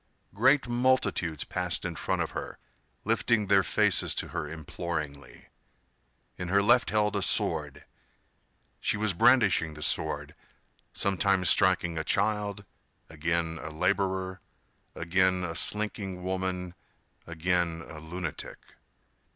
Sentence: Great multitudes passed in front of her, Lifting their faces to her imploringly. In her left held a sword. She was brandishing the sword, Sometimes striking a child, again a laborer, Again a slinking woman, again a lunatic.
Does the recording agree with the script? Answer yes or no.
yes